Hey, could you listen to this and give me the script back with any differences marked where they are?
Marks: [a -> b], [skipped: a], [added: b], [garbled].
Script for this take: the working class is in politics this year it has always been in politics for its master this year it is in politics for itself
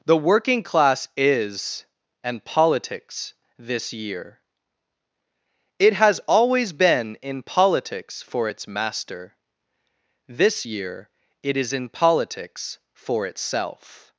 the working class is [in -> and] politics this year it has always been in politics for its master this year it is in politics for itself